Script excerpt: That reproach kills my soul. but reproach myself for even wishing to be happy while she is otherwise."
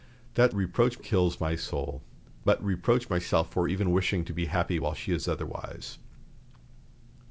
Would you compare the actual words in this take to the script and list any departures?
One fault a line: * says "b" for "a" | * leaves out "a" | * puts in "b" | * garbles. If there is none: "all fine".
all fine